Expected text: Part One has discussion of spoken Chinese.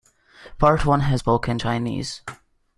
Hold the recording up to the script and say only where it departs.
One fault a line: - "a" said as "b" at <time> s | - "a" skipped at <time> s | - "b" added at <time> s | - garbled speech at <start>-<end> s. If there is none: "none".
- "discussion of" skipped at 1.2 s